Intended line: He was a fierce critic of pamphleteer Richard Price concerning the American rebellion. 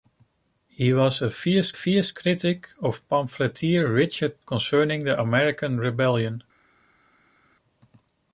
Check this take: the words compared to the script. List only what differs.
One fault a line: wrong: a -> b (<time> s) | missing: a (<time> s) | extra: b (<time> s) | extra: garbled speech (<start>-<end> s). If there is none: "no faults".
extra: fierce (1.7 s)
missing: Price (4.4 s)